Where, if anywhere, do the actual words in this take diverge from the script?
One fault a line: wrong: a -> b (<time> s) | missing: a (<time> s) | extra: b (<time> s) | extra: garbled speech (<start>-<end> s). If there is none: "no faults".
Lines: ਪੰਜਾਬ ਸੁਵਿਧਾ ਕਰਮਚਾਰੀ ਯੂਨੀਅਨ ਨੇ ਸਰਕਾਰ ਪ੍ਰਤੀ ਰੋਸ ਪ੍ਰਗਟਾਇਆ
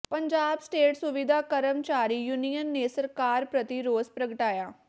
extra: ਸਟੇਟ (0.6 s)